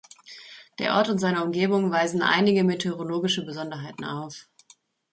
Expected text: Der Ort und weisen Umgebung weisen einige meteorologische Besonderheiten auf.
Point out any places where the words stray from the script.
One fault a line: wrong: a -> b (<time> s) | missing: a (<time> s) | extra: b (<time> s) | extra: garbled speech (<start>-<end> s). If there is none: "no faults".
wrong: weisen -> seine (1.2 s)